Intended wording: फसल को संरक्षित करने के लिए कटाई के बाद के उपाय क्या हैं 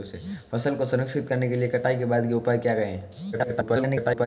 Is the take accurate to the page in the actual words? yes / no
no